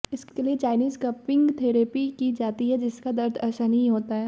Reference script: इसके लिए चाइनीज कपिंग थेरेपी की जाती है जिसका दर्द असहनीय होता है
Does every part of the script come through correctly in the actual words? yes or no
yes